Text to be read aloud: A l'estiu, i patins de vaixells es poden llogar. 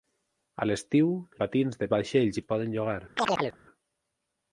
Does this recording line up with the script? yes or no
yes